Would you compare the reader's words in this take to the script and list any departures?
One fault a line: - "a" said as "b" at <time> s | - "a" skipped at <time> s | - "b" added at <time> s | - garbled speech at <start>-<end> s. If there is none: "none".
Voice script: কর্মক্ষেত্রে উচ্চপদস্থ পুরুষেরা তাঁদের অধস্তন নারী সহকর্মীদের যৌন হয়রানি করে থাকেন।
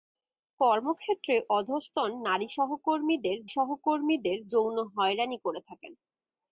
- "উচ্চপদস্থ পুরুষেরা তাঁদের" skipped at 1.4 s
- "সহকর্মীদের" added at 3.5 s